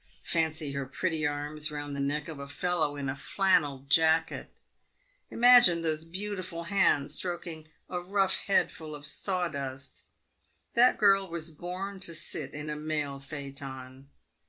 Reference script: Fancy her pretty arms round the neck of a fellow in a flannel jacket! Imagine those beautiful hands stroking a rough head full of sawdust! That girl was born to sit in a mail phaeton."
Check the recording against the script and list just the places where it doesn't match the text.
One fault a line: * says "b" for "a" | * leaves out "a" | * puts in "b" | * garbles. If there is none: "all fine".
all fine